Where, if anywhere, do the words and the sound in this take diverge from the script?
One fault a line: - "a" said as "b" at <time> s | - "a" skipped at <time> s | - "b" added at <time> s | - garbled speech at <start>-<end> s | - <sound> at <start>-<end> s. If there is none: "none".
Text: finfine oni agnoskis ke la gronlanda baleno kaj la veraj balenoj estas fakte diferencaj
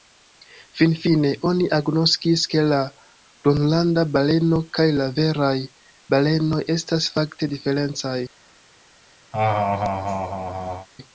- laugh at 9.3-10.9 s